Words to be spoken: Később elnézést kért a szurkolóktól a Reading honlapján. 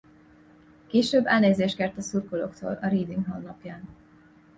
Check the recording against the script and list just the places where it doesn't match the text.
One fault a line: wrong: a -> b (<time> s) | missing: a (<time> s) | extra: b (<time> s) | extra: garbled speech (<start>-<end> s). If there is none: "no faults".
no faults